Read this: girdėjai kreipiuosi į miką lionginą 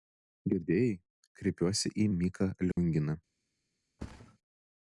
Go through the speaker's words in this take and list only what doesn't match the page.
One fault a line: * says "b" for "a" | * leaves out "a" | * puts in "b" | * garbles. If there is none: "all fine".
all fine